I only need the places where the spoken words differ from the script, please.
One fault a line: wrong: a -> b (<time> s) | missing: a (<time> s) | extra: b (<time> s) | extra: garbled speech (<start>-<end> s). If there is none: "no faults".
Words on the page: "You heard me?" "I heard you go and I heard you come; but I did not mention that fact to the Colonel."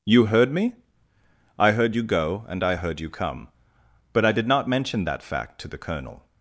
no faults